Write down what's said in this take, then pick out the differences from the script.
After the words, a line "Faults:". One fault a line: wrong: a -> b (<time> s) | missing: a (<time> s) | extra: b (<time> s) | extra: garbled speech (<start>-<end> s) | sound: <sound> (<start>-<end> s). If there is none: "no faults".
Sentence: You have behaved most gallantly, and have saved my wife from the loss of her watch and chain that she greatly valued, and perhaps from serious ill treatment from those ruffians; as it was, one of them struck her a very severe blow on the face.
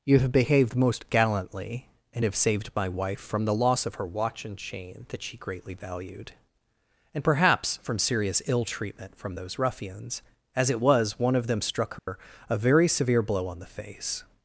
You have behaved most gallantly, and have saved my wife from the loss of her watch and chain that she greatly valued, and perhaps from serious ill treatment from those ruffians; as it was, one of them struck her a very severe blow on the face.
Faults:
sound: dropout (12.0-12.1 s)